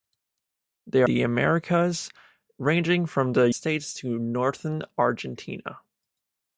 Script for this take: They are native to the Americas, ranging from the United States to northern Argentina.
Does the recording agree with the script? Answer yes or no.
no